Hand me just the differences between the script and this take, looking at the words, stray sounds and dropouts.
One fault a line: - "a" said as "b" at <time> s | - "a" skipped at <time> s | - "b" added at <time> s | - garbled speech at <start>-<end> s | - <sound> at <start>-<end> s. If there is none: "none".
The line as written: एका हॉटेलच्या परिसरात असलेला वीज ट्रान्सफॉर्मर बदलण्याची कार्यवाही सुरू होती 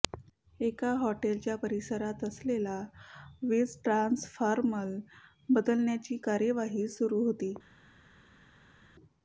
none